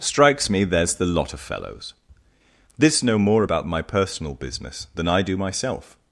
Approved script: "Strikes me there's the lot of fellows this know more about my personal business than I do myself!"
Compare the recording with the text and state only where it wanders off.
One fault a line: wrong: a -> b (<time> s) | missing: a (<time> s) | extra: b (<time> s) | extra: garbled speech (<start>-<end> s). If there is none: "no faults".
no faults